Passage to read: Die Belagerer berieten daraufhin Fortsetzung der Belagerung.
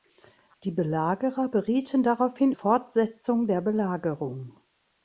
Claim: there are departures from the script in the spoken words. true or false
false